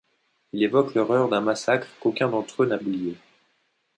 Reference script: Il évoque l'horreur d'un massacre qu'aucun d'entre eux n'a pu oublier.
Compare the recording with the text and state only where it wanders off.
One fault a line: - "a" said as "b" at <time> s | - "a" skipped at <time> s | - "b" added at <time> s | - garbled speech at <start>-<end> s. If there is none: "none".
- "pu" skipped at 2.8 s